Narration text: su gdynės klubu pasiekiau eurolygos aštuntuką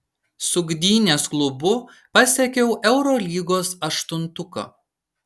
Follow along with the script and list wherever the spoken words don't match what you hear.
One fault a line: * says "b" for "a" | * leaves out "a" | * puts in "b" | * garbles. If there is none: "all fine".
all fine